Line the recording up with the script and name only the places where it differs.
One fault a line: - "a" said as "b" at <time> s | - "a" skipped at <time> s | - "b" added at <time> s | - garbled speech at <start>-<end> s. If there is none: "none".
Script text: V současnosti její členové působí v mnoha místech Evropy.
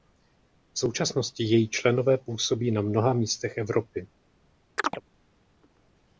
- "v" said as "na" at 2.7 s